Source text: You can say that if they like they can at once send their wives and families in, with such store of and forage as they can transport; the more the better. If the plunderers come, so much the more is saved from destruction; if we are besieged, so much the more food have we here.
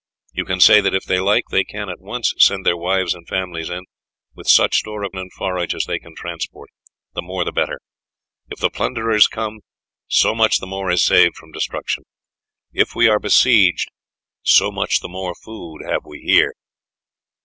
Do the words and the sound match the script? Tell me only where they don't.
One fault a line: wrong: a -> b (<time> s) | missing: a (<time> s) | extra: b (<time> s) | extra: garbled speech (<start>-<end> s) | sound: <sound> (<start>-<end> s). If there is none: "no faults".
no faults